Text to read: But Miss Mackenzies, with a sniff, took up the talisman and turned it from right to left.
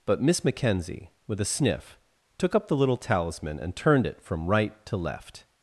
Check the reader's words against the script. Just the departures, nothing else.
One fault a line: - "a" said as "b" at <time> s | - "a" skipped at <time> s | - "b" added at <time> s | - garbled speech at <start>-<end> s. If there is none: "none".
- "Mackenzies" said as "Mackenzie" at 0.4 s
- "little" added at 2.8 s